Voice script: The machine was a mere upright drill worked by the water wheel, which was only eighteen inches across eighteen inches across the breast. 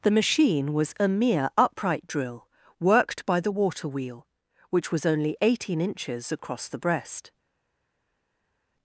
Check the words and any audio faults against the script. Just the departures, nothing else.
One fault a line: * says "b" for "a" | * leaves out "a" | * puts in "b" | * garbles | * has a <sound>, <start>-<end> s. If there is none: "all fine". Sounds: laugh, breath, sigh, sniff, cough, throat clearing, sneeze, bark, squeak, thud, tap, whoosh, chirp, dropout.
* leaves out "eighteen inches across"